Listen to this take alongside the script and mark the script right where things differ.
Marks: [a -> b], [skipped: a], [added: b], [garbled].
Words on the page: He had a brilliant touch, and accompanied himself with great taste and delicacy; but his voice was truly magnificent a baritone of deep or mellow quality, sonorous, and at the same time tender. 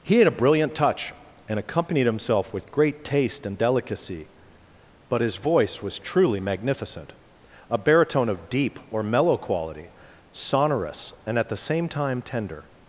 He had a brilliant touch, and accompanied himself with great taste and delicacy; but his voice was truly magnificent a baritone of deep or mellow quality, sonorous, and at the same time tender.